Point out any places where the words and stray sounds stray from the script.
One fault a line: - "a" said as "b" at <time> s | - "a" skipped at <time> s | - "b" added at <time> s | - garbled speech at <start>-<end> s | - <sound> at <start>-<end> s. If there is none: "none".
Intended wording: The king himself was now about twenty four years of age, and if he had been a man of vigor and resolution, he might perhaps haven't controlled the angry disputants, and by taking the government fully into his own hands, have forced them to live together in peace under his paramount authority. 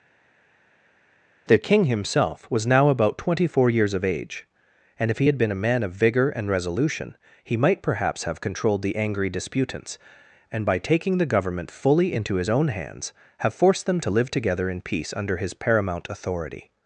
- "haven't" said as "have" at 8.2 s